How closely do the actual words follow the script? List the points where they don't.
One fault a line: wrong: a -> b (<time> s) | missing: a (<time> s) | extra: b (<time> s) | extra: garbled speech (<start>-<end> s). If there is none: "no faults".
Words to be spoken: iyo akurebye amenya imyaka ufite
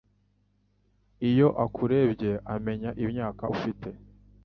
no faults